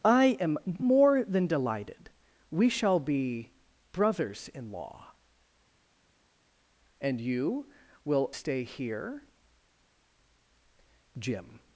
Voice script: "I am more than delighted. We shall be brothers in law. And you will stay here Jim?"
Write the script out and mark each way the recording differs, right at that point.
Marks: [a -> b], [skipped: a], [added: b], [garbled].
"I am more than delighted. We shall be brothers in law. And you will stay here Jim?"